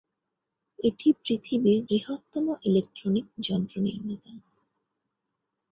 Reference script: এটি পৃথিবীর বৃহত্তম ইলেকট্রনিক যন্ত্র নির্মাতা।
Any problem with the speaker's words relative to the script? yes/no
no